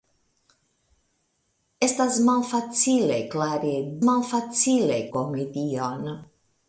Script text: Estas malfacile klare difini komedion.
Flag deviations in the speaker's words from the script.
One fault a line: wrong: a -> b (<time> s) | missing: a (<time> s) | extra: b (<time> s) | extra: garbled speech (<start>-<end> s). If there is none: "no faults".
wrong: difini -> malfacile (4.1 s)